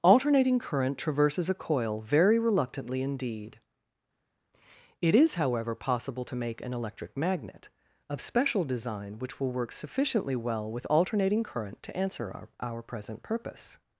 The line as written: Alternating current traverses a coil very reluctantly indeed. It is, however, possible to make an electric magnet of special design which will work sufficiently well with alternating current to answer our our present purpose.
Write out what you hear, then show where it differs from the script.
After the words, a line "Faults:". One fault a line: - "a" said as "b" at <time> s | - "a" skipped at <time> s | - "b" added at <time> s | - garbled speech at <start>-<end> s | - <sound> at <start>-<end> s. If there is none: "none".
Alternating current traverses a coil very reluctantly indeed. It is, however, possible to make an electric magnet of special design which will work sufficiently well with alternating current to answer our our present purpose.
Faults:
none